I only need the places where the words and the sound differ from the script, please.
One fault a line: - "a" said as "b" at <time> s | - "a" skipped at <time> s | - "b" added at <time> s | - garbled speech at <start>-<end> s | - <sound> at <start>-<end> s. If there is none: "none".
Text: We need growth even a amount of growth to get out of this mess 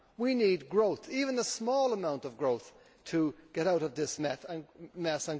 - "small" added at 1.4 s